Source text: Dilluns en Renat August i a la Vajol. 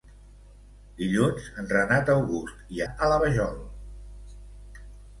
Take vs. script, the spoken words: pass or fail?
pass